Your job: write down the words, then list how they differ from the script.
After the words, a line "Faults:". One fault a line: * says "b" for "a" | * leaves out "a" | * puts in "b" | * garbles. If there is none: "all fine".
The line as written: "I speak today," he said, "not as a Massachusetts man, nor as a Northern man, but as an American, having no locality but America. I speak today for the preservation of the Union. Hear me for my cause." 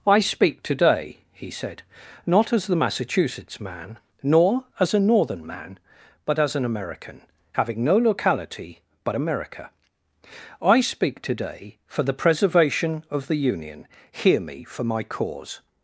"I speak today," he said, "not as the Massachusetts man, nor as a Northern man, but as an American, having no locality but America. I speak today for the preservation of the Union. Hear me for my cause."
Faults:
* says "the" for "a"